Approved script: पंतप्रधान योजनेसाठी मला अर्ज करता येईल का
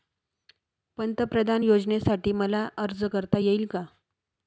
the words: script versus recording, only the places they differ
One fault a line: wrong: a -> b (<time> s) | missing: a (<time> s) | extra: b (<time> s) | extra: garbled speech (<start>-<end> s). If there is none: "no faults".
no faults